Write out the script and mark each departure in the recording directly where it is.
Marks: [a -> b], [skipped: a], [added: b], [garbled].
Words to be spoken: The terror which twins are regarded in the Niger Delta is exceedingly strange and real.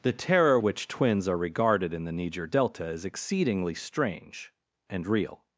The terror which twins are regarded in the Niger Delta is exceedingly strange and real.